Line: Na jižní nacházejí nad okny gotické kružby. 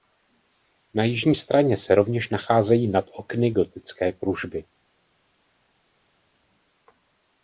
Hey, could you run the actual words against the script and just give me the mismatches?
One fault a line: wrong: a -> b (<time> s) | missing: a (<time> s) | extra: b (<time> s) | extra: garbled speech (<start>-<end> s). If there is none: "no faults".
extra: straně se rovněž (1.3 s)